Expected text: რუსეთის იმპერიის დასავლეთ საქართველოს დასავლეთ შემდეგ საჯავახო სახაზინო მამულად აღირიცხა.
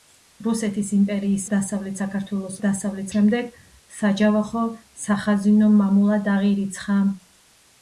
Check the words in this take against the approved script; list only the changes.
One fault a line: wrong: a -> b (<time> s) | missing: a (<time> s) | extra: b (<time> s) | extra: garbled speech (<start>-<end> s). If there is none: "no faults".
no faults